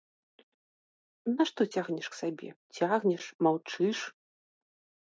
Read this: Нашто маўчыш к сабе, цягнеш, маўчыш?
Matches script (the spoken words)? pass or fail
fail